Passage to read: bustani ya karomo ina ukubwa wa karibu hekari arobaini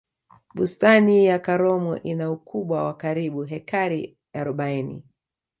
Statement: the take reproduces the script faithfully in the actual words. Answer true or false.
true